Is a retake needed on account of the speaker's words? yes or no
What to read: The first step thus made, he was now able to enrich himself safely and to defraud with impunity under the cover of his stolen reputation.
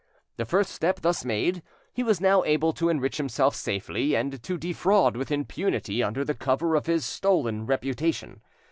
no